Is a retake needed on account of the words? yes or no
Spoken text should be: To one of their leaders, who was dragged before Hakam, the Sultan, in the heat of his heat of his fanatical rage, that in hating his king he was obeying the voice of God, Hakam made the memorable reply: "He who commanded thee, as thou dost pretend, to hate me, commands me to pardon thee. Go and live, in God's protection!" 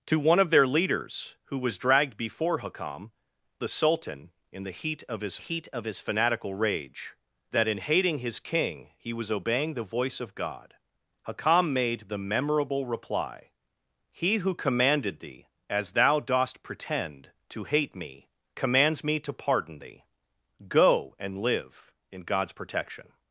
no